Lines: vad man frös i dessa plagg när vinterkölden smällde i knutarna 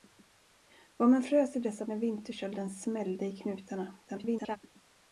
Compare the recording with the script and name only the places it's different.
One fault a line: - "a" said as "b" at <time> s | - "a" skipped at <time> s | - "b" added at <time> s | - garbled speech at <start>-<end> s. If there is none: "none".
- "plagg" skipped at 1.9 s
- garbled speech at 4.1-4.6 s